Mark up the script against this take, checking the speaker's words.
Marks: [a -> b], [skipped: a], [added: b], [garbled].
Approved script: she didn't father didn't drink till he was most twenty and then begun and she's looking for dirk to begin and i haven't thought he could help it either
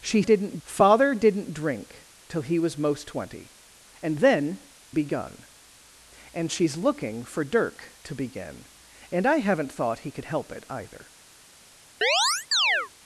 she didn't father didn't drink till he was most twenty and then begun and she's looking for dirk to begin and i haven't thought he could help it either